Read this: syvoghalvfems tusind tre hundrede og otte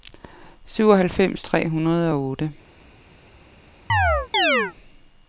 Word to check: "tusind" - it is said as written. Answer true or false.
false